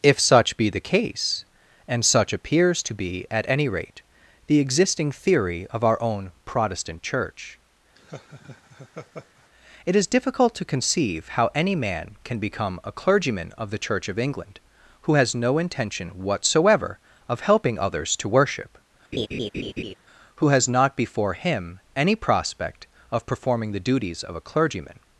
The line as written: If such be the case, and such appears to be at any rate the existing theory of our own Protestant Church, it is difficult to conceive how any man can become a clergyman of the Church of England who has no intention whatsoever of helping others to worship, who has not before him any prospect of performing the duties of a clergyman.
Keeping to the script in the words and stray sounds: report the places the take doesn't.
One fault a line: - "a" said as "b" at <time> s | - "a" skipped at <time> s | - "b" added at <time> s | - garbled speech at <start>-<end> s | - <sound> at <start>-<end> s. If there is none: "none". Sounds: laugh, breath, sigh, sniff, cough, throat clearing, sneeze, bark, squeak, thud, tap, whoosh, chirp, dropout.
- laugh at 8.0-9.5 s
- laugh at 19.1-19.9 s